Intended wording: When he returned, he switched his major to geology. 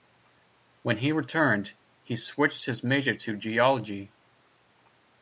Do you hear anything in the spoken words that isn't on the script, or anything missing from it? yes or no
no